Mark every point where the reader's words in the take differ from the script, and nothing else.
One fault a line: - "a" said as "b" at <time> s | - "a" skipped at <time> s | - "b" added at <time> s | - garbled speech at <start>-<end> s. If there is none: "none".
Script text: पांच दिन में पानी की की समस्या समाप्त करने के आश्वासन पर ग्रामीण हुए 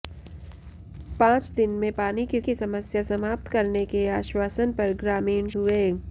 none